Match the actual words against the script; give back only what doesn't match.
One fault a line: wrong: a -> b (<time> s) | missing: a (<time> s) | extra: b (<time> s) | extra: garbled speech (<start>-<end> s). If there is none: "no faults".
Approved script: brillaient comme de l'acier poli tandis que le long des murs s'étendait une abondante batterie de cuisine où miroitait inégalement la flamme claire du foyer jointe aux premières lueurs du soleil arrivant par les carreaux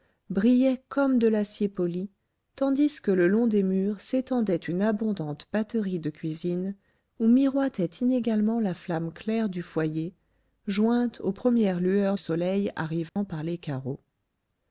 missing: du (12.2 s)